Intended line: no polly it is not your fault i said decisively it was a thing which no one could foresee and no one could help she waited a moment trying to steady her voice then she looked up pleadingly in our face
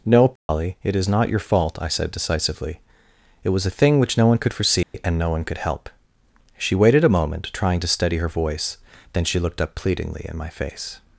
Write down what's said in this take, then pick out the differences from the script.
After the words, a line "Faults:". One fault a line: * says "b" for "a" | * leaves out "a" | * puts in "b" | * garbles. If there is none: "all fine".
no polly it is not your fault i said decisively it was a thing which no one could foresee and no one could help she waited a moment trying to steady her voice then she looked up pleadingly in my face
Faults:
* says "my" for "our"